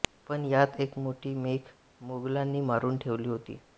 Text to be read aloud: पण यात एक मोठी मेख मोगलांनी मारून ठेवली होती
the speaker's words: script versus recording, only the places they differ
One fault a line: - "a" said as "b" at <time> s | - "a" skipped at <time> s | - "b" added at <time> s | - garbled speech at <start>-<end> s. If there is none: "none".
none